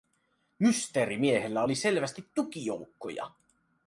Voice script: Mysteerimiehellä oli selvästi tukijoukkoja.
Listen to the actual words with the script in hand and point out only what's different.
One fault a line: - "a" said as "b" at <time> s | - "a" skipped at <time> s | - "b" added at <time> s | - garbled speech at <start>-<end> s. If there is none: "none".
none